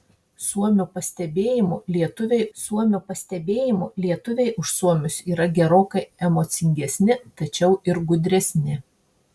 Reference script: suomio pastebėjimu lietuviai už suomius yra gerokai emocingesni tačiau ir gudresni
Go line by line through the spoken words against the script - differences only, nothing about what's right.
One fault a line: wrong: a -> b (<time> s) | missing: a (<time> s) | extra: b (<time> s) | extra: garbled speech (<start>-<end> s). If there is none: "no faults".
extra: suomio pastebėjimu lietuviai (2.6 s)